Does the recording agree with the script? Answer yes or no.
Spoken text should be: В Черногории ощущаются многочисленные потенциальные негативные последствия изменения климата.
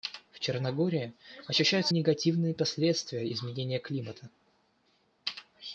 no